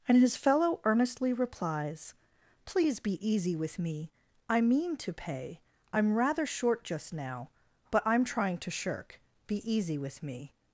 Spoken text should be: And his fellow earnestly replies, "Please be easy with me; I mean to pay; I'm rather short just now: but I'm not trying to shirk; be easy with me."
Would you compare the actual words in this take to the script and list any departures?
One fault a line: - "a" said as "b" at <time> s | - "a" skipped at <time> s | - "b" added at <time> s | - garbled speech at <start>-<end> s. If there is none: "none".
- "not" skipped at 8.2 s